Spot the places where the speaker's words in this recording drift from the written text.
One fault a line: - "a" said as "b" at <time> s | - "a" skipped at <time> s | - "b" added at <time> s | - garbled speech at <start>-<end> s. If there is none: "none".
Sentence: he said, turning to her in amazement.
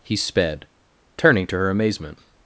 - "said" said as "sped" at 0.1 s
- "in" skipped at 1.7 s